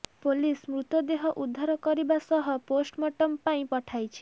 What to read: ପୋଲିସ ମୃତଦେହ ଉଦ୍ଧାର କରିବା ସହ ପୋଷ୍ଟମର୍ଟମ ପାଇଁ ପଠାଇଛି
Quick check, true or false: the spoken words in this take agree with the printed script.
true